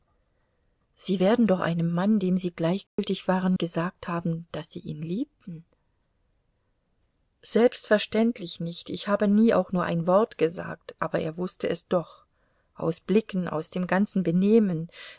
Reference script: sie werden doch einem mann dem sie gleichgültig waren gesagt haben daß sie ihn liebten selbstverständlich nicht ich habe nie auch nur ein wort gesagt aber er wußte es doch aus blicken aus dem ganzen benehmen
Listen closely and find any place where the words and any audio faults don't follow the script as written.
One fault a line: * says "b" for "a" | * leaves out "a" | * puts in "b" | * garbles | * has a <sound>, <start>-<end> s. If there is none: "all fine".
* has a dropout, 2.9-3.0 s